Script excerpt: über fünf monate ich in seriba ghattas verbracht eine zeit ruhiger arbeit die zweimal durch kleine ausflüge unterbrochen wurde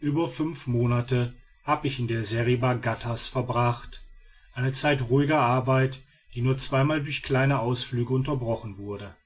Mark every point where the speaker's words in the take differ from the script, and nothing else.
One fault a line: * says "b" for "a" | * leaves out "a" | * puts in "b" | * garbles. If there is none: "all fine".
* puts in "habe"
* puts in "der"
* puts in "nur"